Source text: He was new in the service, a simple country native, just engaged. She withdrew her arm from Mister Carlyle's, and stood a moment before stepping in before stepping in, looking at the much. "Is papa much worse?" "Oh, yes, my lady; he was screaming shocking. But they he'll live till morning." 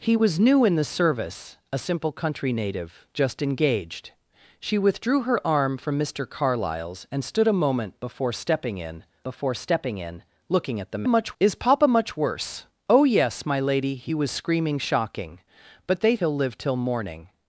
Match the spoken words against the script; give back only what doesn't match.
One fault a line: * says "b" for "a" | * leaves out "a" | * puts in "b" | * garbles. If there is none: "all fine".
all fine